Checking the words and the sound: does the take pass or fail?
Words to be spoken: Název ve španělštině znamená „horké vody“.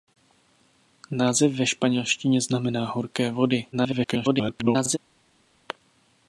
fail